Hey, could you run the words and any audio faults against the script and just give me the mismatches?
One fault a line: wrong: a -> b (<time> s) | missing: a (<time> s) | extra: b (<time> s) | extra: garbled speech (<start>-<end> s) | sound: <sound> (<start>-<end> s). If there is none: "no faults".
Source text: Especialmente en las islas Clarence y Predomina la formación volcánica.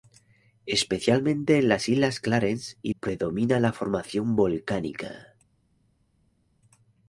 no faults